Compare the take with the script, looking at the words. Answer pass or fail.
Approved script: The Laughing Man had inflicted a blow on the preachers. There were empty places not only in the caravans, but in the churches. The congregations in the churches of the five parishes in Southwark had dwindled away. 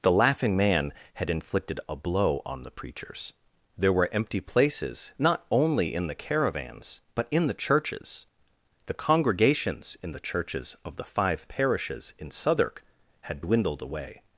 pass